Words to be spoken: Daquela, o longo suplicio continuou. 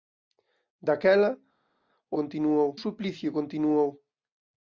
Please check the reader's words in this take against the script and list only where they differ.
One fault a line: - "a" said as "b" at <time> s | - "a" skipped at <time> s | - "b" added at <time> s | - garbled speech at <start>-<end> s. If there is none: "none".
- "longo" said as "continuou" at 2.2 s